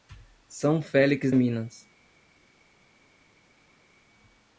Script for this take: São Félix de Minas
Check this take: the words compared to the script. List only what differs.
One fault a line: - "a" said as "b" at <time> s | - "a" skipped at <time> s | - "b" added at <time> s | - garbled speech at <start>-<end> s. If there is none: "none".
- "de" skipped at 1.3 s